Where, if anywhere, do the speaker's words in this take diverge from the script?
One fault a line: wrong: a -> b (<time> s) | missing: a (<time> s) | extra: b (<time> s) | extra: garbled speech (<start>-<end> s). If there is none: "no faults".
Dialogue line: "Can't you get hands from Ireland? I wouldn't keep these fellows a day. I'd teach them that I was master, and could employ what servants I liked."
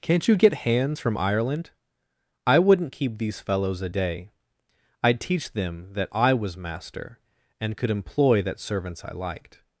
wrong: what -> that (8.4 s)